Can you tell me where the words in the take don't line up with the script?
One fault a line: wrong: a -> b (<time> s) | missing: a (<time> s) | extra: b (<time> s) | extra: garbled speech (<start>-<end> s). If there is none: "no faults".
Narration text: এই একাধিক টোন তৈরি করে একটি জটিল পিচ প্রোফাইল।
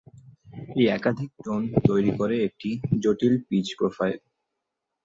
no faults